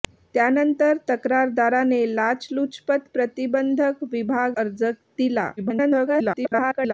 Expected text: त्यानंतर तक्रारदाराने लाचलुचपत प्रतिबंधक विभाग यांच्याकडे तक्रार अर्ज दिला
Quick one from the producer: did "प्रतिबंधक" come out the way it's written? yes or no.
yes